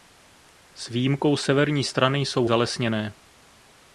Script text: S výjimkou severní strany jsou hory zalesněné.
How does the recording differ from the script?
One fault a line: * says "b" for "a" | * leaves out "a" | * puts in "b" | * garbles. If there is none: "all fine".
* leaves out "hory"